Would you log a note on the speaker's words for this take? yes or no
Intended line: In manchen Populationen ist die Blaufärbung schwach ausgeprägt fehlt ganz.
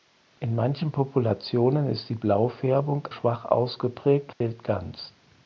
no